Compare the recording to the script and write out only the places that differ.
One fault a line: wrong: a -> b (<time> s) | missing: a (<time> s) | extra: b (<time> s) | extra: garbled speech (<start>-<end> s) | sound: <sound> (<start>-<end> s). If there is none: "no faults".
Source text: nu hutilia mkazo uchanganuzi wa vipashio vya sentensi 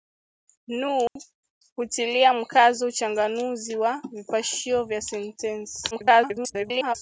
sound: dropout (1.1-1.2 s)
extra: garbled speech (5.9-7.0 s)